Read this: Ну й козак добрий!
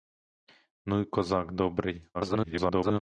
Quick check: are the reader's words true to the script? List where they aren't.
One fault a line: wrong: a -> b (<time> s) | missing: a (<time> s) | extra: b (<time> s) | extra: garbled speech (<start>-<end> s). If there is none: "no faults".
extra: garbled speech (2.1-3.0 s)